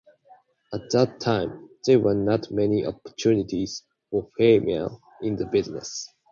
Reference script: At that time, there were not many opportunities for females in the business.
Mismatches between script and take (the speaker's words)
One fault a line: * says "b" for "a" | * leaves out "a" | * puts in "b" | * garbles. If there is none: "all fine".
all fine